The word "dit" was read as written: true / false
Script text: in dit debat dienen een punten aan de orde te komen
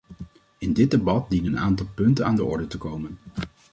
true